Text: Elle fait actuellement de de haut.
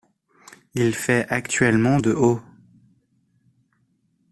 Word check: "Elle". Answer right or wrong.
wrong